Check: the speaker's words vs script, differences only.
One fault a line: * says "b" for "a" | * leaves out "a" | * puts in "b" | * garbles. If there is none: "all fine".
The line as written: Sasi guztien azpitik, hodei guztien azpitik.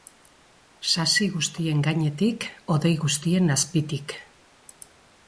* says "gainetik" for "azpitik"